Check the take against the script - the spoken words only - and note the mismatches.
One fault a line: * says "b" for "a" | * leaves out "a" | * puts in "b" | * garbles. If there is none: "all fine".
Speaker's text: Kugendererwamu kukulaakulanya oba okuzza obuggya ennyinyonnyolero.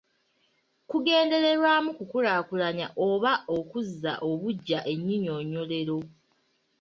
all fine